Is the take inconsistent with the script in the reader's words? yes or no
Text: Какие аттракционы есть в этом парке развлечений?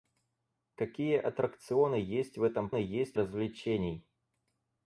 yes